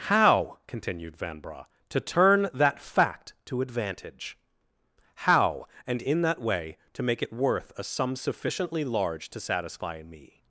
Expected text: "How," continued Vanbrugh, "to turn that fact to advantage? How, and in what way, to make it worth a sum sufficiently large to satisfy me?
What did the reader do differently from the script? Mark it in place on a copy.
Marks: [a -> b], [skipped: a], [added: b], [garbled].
"How," continued Vanbrugh, "to turn that fact to advantage? How, and in [what -> that] way, to make it worth a sum sufficiently large to satisfy me?